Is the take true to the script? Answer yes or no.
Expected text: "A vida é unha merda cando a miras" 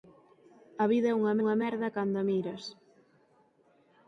no